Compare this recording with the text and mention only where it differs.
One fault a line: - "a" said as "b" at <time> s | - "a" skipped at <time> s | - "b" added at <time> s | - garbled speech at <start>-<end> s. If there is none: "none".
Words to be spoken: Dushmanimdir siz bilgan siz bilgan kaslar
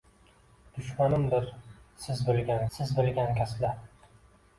none